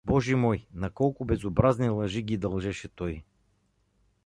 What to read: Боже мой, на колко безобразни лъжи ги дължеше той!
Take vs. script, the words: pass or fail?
pass